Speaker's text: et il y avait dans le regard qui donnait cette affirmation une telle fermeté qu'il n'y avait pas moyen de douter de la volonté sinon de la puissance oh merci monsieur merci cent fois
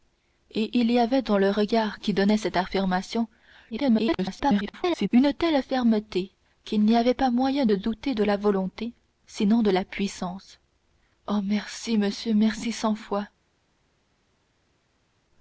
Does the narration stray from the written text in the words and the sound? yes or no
yes